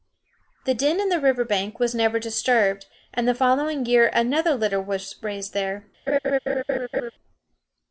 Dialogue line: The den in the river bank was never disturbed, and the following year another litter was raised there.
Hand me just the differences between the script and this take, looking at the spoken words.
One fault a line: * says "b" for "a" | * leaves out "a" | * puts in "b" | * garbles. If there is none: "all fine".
all fine